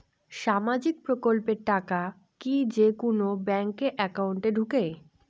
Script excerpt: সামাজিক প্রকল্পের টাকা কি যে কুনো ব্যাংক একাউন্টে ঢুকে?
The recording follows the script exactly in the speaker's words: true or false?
true